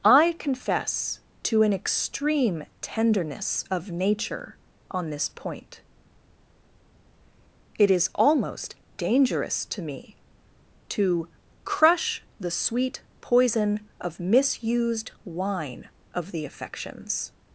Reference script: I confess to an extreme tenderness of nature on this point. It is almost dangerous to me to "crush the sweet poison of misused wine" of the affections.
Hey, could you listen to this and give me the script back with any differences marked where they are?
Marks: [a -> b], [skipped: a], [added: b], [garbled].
I confess to an extreme tenderness of nature on this point. It is almost dangerous to me to "crush the sweet poison of misused wine" of the affections.